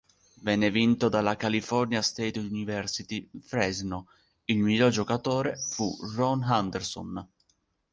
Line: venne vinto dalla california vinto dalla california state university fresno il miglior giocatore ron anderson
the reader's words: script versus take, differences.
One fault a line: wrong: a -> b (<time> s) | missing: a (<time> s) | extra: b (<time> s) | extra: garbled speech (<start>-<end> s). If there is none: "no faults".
missing: vinto dalla california (2.0 s)
extra: fu (5.6 s)